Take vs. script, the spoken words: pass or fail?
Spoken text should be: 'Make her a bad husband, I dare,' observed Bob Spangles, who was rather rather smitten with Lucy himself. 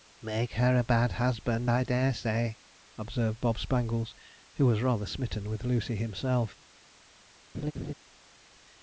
fail